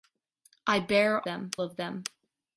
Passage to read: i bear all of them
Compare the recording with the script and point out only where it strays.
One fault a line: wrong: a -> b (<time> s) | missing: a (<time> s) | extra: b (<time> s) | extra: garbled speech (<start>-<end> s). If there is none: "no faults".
wrong: all -> them (1.2 s)